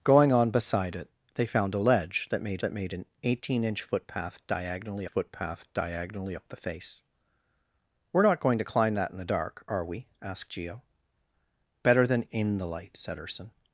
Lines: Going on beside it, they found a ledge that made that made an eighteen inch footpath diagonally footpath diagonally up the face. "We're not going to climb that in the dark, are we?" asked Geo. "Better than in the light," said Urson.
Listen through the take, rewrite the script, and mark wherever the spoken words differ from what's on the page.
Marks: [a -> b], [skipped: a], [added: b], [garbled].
Going on beside it, they found a ledge that made that made an eighteen inch footpath diagonally footpath diagonally up the face. "We're not going to climb that in the dark, are we?" asked Geo. "Better than in the light," said Urson.